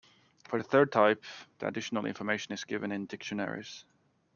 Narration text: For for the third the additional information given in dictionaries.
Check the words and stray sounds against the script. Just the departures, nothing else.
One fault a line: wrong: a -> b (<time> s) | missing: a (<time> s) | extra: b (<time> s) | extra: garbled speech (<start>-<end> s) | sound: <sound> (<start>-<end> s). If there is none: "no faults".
missing: for (0.6 s)
extra: type (0.9 s)
extra: is (2.5 s)